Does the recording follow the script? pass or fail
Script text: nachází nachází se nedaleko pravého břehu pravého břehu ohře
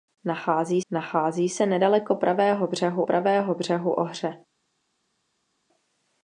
pass